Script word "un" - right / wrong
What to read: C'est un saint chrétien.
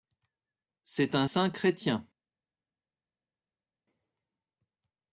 right